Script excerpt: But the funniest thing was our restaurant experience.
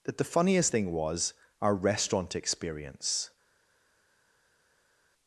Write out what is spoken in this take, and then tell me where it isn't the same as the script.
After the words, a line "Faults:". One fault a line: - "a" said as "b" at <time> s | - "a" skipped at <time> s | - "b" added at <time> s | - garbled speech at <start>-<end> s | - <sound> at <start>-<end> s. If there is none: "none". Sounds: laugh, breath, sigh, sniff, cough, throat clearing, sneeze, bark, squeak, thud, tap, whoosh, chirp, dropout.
That the funniest thing was our restaurant experience.
Faults:
- "But" said as "That" at 0.0 s